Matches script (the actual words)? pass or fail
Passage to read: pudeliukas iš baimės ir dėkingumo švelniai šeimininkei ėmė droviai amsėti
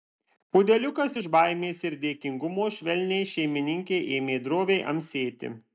pass